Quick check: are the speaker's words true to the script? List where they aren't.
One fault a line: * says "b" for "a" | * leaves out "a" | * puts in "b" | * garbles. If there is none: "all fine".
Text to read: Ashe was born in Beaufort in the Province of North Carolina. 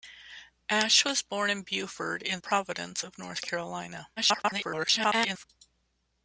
* leaves out "the"
* garbles